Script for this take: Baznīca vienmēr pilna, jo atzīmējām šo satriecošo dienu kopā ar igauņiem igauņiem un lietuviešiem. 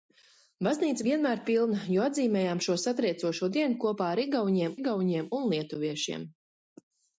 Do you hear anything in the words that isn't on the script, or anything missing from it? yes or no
no